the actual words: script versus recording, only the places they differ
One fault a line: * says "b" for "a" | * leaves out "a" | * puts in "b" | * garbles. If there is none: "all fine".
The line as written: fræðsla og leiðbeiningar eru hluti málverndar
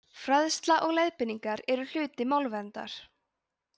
all fine